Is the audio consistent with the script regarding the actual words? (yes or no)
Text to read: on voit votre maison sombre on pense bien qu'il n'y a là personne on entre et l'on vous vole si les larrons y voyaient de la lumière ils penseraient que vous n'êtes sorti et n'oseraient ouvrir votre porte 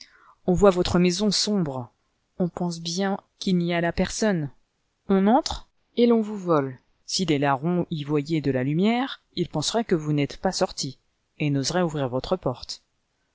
no